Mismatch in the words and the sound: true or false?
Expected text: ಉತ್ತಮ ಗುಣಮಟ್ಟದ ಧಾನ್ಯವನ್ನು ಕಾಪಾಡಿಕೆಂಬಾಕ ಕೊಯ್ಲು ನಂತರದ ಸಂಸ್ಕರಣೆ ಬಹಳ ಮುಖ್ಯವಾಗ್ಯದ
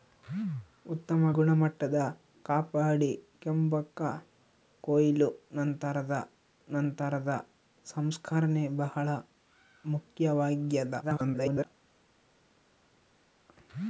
true